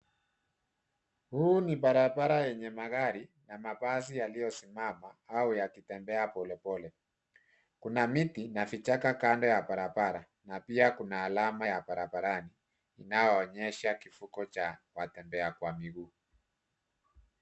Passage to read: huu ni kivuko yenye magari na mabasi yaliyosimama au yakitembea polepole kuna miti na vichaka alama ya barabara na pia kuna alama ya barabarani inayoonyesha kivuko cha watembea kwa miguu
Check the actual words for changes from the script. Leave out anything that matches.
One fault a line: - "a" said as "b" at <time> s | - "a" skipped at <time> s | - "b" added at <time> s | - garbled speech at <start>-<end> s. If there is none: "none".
- "kivuko" said as "barabara" at 1.8 s
- "alama" said as "kando" at 9.1 s